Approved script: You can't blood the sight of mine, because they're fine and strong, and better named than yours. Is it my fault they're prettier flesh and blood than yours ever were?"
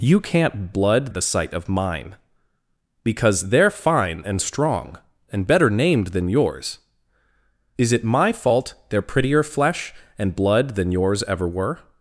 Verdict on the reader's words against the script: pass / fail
pass